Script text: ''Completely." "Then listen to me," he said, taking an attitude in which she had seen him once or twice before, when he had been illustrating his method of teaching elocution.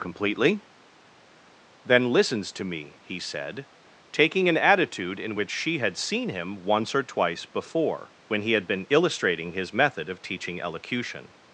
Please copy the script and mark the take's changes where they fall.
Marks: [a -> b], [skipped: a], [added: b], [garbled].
''Completely." "Then [listen -> listens] to me," he said, taking an attitude in which she had seen him once or twice before, when he had been illustrating his method of teaching elocution.